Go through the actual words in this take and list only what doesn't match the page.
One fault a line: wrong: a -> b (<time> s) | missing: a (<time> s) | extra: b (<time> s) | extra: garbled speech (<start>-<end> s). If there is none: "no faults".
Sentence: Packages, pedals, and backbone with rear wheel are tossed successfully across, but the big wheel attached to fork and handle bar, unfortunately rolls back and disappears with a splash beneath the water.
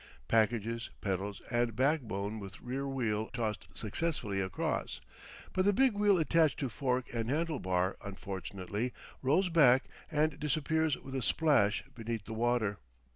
missing: are (3.3 s)